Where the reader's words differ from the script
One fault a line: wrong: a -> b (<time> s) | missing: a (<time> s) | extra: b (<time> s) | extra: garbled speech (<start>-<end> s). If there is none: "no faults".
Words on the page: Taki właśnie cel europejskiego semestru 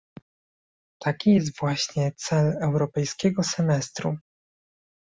extra: jest (1.3 s)